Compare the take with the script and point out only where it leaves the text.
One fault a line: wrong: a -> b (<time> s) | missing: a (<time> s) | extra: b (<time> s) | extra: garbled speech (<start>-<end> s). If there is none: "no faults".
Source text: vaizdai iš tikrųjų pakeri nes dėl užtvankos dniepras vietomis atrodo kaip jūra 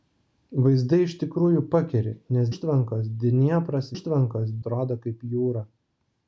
missing: dėl (2.5 s)
wrong: vietomis -> užtvankos (3.9 s)